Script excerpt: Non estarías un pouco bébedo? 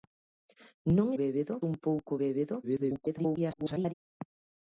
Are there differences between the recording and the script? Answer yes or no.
yes